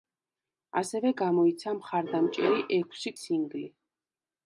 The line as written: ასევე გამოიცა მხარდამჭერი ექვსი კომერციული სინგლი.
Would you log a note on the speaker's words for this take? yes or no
yes